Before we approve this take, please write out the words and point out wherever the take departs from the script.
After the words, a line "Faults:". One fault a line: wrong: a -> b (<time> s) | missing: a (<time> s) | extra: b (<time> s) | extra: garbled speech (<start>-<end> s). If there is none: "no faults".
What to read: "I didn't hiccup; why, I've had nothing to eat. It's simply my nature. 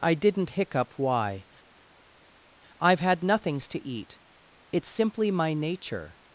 "I didn't hiccup; why, I've had nothings to eat. It's simply my nature.
Faults:
wrong: nothing -> nothings (3.2 s)